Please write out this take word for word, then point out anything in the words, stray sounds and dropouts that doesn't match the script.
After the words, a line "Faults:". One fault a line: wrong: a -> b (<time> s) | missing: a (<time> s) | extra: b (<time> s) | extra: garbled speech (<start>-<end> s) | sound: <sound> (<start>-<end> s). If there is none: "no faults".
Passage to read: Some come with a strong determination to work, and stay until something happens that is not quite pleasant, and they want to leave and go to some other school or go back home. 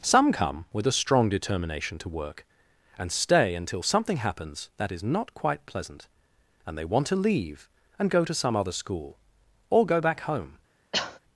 Some come with a strong determination to work, and stay until something happens that is not quite pleasant, and they want to leave and go to some other school or go back home.
Faults:
sound: cough (10.9-11.2 s)